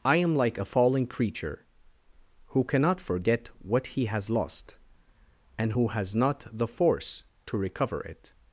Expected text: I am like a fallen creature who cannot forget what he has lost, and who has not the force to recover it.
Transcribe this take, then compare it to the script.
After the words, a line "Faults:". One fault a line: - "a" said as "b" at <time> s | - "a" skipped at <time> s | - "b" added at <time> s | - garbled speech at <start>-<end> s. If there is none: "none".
I am like a fallen creature who cannot forget what he has lost, and who has not the force to recover it.
Faults:
none